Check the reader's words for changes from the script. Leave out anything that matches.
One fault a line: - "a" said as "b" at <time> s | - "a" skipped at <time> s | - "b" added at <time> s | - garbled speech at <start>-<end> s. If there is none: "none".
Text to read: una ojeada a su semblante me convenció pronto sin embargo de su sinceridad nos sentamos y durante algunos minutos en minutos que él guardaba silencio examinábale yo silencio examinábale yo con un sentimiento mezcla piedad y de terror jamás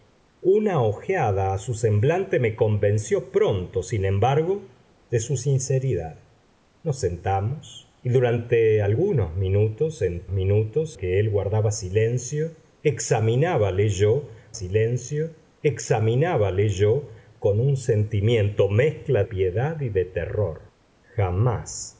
none